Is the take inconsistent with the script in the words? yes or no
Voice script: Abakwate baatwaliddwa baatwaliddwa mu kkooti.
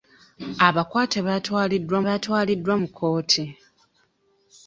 no